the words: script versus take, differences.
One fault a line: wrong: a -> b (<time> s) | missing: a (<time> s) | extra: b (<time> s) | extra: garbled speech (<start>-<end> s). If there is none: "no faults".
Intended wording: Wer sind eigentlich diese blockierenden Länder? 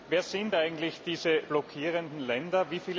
no faults